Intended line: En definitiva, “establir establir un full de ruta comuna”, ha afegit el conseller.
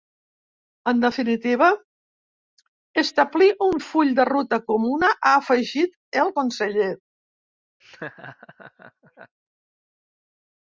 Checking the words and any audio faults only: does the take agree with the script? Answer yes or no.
no